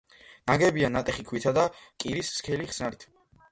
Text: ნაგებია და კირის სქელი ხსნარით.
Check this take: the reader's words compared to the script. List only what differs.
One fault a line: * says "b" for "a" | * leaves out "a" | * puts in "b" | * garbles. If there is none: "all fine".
* puts in "ნატეხი ქვითა"